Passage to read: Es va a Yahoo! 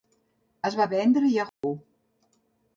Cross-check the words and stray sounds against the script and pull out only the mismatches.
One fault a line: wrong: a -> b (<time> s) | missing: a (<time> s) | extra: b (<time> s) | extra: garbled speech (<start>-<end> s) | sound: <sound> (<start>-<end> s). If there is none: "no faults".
extra: vendre (0.9 s)
sound: dropout (1.5-1.6 s)